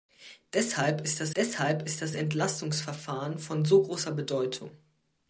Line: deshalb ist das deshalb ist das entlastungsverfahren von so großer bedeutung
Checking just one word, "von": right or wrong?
right